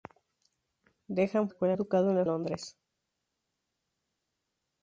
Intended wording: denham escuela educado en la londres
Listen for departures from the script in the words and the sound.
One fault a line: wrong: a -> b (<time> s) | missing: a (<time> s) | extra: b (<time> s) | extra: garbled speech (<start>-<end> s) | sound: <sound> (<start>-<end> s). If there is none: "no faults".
no faults